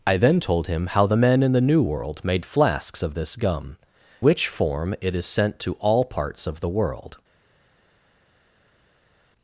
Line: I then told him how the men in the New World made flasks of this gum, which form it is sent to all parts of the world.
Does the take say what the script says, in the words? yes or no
yes